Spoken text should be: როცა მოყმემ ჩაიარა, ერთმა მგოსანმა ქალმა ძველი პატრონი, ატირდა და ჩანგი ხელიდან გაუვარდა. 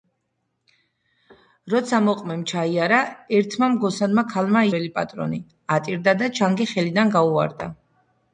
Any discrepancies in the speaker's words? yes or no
no